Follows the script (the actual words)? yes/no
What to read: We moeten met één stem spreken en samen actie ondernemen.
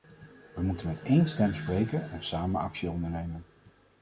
yes